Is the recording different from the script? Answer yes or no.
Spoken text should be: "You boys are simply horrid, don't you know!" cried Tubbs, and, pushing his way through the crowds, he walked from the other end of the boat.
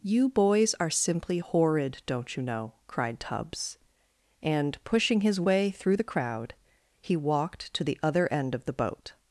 yes